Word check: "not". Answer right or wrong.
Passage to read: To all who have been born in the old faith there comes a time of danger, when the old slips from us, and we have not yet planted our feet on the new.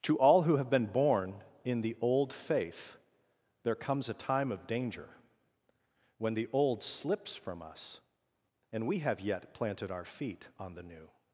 wrong